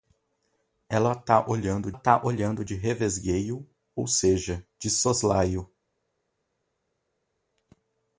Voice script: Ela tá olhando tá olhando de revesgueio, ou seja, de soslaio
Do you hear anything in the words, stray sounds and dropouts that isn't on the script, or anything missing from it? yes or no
no